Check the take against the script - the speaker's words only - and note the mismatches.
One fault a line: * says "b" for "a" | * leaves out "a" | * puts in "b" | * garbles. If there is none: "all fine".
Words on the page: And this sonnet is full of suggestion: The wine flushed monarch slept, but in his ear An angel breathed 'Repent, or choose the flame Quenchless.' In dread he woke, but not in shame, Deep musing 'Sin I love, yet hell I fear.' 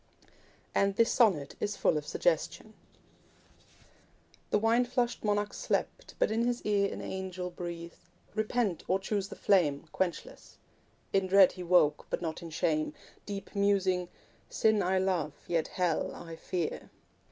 all fine